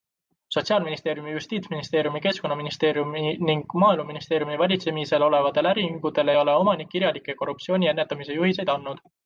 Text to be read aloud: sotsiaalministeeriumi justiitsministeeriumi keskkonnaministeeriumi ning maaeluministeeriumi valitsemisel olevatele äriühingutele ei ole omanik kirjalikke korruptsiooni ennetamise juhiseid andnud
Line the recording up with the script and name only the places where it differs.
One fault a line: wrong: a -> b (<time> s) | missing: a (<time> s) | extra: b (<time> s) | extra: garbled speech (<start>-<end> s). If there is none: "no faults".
no faults